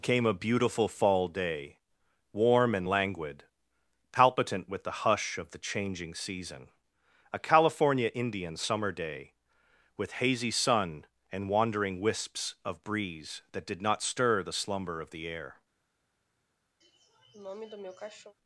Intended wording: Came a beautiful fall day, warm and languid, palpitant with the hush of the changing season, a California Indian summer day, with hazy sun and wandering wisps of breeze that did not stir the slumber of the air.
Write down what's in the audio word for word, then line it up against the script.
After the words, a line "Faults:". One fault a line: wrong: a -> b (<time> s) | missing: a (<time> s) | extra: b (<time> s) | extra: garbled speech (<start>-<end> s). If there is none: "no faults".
Came a beautiful fall day, warm and languid, palpitant with the hush of the changing season, a California Indian summer day, with hazy sun and wandering wisps of breeze that did not stir the slumber of the air.
Faults:
no faults